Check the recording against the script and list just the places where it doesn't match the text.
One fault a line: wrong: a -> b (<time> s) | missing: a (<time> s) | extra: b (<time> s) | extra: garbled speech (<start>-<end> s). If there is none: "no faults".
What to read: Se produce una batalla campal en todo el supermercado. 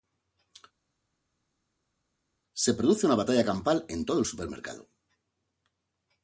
no faults